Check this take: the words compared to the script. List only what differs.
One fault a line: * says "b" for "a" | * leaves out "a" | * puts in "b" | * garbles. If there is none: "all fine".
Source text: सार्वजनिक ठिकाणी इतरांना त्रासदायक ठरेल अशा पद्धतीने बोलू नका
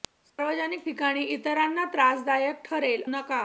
* leaves out "अशा पद्धतीने बोलू"